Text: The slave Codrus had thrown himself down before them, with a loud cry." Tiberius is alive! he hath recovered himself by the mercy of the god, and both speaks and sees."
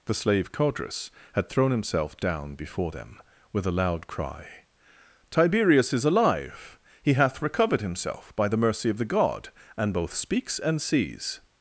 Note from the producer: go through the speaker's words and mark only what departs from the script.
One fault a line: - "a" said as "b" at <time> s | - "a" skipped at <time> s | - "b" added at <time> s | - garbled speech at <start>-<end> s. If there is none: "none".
none